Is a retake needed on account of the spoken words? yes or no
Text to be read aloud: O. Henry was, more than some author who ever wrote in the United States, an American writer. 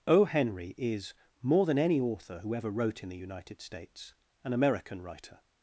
yes